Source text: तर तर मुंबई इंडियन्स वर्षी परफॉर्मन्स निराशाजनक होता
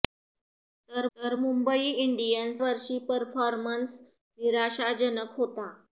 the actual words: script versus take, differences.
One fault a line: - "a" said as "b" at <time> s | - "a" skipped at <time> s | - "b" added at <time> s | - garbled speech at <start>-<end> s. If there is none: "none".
none